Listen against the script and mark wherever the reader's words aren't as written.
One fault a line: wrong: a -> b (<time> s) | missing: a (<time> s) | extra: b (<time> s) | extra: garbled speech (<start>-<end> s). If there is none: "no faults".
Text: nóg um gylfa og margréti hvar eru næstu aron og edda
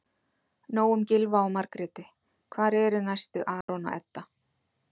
no faults